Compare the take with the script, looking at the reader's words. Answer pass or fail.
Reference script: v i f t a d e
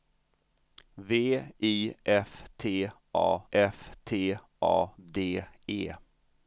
fail